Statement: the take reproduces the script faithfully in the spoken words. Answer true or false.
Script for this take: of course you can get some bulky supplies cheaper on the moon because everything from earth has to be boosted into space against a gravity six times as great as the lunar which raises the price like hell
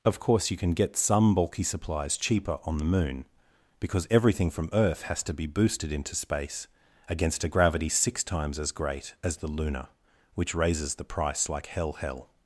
false